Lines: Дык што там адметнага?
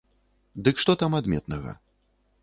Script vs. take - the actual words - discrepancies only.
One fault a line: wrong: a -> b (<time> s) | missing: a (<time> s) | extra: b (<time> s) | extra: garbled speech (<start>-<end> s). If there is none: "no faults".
no faults